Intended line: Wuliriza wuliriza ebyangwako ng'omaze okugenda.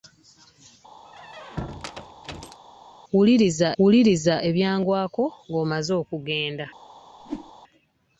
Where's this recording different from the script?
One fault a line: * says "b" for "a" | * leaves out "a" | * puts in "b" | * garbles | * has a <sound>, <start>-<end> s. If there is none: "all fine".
* has a squeak, 1.0-2.6 s
* has a whoosh, 7.2-7.5 s